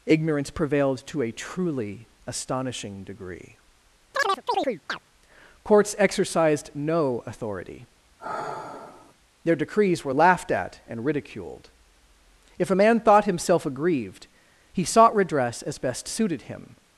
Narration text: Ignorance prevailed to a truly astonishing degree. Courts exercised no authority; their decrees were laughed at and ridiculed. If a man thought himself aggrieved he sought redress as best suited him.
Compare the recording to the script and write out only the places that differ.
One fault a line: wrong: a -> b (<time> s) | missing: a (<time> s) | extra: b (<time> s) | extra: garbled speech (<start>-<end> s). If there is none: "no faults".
no faults